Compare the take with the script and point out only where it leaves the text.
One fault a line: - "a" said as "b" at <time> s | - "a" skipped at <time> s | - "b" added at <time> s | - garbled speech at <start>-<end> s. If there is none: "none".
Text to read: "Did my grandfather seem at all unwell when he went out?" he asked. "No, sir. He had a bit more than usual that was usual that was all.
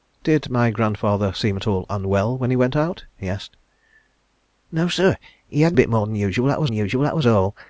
none